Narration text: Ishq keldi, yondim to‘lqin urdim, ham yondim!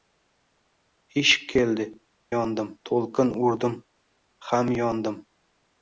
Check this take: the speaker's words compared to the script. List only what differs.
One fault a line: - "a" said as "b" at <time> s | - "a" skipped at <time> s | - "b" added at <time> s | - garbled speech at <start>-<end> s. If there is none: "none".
none